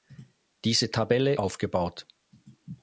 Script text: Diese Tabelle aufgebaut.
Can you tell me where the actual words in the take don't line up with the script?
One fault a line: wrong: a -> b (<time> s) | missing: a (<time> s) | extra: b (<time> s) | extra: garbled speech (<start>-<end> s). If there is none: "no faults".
no faults